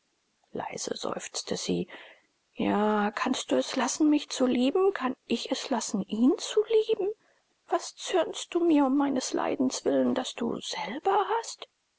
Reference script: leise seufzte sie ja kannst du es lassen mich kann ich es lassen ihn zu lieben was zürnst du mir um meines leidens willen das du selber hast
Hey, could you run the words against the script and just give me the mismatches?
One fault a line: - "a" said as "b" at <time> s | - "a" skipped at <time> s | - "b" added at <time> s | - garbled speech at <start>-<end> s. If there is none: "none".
- "zu lieben" added at 4.3 s